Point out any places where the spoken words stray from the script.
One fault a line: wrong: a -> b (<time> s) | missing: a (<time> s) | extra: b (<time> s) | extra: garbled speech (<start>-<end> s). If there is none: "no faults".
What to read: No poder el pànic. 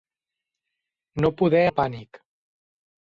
no faults